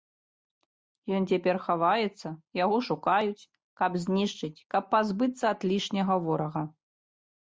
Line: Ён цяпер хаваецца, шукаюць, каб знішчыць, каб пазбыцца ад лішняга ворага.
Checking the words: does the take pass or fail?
fail